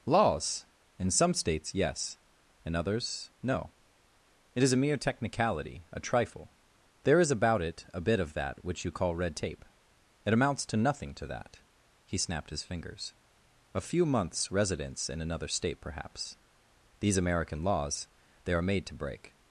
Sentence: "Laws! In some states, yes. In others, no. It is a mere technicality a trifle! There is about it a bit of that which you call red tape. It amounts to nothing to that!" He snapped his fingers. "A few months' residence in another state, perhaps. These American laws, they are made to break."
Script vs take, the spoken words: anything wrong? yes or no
no